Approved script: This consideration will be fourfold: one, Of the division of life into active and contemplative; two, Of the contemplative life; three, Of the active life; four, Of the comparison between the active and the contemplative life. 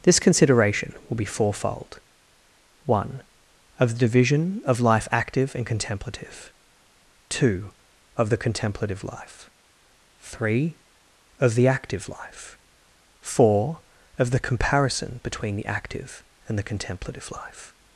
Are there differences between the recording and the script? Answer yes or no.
yes